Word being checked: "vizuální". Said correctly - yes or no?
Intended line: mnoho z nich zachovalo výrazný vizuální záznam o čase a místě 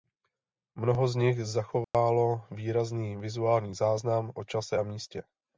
yes